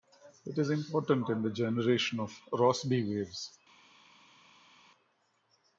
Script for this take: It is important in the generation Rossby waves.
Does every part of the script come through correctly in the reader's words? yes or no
no